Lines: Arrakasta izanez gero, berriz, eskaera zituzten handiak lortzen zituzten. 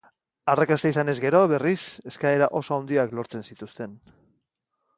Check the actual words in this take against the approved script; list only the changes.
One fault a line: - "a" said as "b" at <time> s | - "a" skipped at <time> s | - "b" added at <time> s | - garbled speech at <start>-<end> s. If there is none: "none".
- "zituzten" said as "oso" at 2.6 s